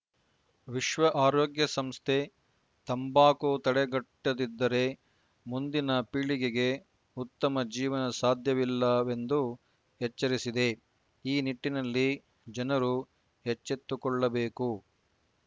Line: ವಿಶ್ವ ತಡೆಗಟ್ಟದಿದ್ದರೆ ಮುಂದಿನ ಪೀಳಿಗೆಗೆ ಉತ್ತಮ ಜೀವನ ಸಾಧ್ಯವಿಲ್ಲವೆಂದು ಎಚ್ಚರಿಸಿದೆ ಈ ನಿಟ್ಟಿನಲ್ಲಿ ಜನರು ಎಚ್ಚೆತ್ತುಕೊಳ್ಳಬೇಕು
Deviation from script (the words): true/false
true